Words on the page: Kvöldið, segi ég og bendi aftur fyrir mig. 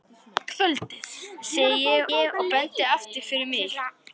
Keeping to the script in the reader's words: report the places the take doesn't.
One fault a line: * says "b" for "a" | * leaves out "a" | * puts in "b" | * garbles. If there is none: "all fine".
* puts in "ég"